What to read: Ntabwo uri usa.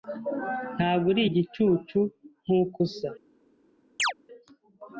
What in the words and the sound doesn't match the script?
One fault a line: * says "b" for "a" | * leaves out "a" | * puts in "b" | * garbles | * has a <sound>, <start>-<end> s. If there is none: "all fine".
* puts in "igicucu nkuko"
* has a chirp, 4.0-4.1 s